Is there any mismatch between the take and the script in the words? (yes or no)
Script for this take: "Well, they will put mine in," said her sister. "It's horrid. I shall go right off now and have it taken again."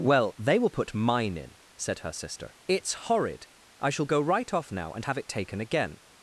no